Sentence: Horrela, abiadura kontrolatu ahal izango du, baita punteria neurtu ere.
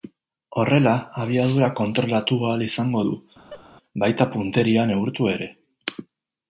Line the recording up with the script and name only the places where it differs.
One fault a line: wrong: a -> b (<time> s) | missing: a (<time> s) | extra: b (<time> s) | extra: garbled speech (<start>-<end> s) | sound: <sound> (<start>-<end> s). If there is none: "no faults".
sound: laugh (3.5-3.7 s)